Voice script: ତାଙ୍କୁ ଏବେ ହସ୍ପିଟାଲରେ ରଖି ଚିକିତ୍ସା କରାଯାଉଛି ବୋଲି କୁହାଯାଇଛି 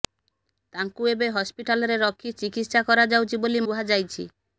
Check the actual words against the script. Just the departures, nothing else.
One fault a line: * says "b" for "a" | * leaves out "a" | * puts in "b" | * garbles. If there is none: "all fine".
all fine